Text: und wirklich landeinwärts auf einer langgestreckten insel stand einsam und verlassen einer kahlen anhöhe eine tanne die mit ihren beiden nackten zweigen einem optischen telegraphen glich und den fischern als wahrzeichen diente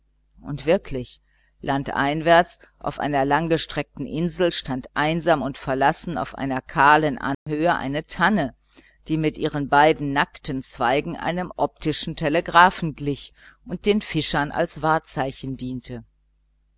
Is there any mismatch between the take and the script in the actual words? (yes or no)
yes